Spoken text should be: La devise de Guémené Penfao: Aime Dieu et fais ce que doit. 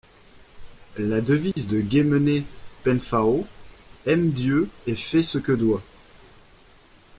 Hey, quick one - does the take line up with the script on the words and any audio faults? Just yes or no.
no